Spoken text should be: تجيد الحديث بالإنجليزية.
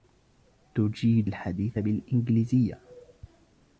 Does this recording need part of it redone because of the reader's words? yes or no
no